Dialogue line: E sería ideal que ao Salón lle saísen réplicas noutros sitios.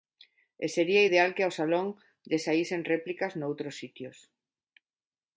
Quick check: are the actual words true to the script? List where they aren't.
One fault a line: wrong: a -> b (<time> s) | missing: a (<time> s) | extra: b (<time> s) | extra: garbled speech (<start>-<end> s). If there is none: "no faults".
no faults